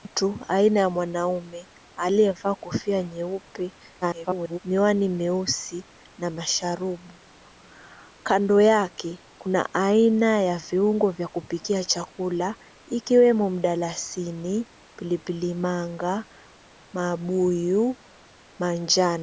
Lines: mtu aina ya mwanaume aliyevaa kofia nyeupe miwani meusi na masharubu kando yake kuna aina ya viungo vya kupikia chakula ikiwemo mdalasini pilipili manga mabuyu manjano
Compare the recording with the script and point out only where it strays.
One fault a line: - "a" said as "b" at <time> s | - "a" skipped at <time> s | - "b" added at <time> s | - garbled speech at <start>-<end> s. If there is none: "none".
- garbled speech at 4.0-4.6 s